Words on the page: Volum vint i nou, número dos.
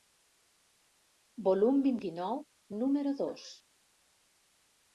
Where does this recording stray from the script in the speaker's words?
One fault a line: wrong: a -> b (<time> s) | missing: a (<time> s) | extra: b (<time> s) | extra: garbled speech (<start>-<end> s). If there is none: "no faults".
no faults